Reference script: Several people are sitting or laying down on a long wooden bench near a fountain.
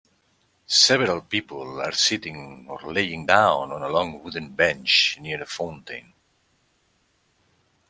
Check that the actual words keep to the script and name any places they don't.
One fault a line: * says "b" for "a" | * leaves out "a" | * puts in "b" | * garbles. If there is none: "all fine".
all fine